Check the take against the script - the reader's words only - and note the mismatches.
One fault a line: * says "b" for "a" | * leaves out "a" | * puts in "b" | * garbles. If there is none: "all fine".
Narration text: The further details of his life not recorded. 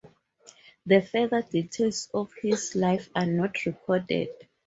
* puts in "are"